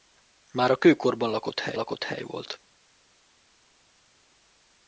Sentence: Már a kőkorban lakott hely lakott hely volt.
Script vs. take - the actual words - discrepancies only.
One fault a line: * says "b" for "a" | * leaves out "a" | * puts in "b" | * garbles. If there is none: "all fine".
all fine